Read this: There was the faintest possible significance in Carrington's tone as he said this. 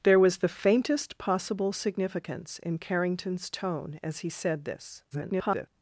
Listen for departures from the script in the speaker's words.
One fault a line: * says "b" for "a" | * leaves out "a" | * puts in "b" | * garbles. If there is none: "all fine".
* garbles